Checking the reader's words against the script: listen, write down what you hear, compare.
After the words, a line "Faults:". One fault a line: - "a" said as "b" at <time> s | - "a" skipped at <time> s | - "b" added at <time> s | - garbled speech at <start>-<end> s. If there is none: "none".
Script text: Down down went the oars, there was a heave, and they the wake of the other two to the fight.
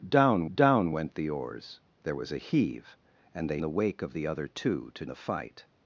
Down down went the oars, there was a heave, and they the wake of the other two to the fight.
Faults:
none